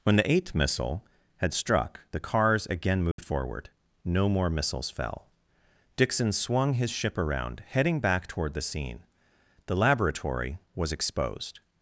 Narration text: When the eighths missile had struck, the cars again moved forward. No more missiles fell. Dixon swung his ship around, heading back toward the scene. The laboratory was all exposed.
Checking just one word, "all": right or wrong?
wrong